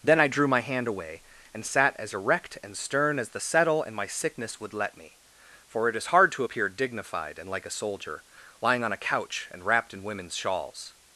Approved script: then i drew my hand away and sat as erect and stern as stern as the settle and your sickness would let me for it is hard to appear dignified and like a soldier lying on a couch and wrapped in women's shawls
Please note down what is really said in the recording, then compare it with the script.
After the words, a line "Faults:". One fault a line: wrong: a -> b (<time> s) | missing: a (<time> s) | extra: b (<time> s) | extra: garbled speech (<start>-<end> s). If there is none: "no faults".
then i drew my hand away and sat as erect and stern as the settle and my sickness would let me for it is hard to appear dignified and like a soldier lying on a couch and wrapped in women's shawls
Faults:
missing: stern as (3.3 s)
wrong: your -> my (4.0 s)